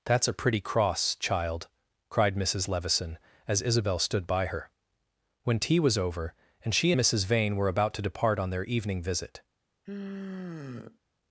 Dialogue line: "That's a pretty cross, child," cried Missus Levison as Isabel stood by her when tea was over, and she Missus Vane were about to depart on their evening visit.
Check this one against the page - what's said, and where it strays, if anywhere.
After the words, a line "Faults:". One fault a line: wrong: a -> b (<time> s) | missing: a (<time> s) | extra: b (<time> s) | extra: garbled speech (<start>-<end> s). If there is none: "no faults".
"That's a pretty cross, child," cried Missus Levison as Isabel stood by her when tea was over, and she Missus Vane were about to depart on their evening visit.
Faults:
no faults